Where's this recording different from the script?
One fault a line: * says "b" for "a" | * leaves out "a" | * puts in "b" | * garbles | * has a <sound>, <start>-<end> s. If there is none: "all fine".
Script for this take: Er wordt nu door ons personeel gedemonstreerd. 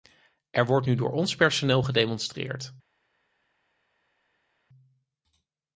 all fine